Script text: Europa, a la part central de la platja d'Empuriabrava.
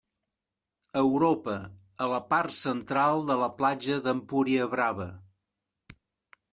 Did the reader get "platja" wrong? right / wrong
right